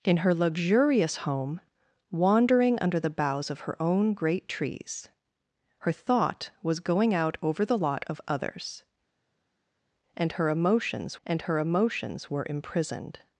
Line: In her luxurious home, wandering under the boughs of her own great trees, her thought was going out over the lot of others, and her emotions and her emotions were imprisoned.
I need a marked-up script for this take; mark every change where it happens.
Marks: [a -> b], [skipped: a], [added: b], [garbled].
In her luxurious home, wandering under the boughs of her own great trees, her thought was going out over the lot of others, and her emotions and her emotions were imprisoned.